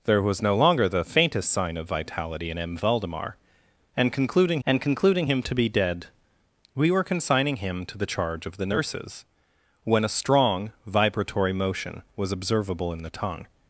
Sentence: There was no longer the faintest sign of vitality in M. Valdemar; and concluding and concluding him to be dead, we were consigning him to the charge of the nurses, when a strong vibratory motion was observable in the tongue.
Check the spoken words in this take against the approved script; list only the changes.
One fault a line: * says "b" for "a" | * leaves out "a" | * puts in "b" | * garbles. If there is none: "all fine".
all fine